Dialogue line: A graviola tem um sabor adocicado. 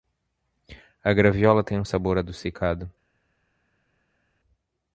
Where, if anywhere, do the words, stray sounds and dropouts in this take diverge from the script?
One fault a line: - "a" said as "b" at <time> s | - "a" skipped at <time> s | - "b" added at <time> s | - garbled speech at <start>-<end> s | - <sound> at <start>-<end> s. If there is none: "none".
none